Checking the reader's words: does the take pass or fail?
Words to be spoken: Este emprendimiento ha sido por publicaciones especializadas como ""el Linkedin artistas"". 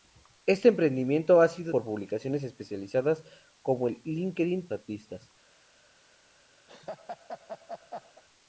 pass